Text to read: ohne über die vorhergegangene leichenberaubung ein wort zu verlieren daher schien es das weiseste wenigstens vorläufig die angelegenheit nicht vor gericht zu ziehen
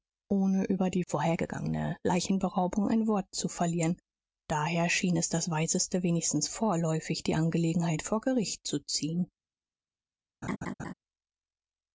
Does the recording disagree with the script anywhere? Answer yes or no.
yes